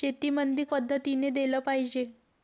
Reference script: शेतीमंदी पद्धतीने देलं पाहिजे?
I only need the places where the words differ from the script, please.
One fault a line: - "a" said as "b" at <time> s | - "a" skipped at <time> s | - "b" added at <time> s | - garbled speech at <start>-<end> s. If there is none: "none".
none